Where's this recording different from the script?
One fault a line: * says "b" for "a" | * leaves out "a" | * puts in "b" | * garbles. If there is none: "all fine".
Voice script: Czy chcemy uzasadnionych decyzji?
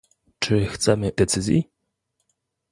* leaves out "uzasadnionych"